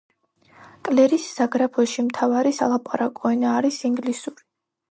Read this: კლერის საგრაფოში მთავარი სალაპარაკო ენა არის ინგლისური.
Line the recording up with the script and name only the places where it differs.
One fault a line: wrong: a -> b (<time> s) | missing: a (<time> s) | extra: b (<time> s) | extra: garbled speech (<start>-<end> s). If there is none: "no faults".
no faults